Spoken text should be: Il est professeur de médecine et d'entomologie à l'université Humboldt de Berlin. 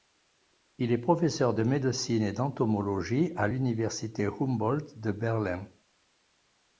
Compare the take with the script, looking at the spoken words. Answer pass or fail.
pass